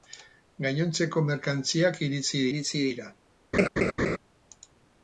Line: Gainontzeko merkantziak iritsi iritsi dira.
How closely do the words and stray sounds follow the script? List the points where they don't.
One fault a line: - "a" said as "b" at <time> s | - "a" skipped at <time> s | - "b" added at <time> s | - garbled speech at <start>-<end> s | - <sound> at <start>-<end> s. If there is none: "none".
- laugh at 3.5-4.2 s